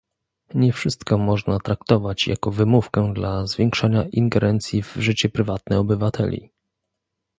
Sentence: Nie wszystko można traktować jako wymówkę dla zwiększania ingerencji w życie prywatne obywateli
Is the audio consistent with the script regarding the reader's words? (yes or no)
yes